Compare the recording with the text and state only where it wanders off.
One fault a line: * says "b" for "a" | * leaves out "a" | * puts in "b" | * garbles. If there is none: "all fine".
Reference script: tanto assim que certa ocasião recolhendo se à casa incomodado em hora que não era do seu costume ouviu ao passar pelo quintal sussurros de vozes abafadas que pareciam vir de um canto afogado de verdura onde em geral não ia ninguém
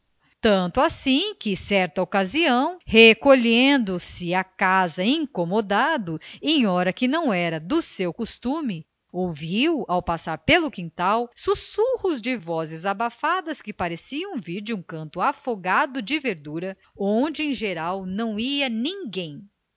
all fine